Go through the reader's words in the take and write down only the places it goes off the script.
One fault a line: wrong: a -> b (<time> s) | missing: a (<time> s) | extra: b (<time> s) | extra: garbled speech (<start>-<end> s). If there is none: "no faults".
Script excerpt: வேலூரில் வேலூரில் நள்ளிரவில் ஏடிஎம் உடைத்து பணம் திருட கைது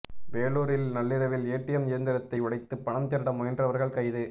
missing: வேலூரில் (0.9 s)
extra: இயந்திரத்தை (1.9 s)
extra: முயன்றவர்கள் (3.3 s)